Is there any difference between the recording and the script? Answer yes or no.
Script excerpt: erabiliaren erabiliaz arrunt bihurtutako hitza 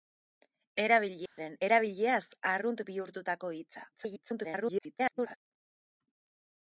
yes